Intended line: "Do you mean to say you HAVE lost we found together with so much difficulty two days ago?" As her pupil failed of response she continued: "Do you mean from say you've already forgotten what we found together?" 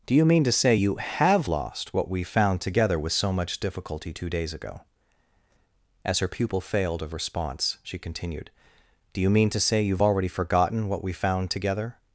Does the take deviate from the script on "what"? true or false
false